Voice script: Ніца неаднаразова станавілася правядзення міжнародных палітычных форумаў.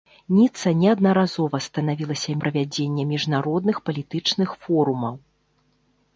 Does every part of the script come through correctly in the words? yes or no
yes